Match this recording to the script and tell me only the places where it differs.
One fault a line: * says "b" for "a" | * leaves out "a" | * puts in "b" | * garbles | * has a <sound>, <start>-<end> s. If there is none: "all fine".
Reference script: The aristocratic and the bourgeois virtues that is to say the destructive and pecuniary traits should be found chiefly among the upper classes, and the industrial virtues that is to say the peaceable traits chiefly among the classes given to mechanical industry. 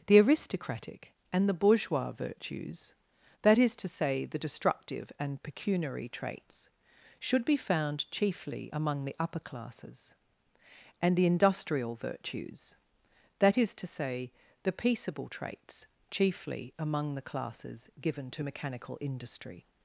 all fine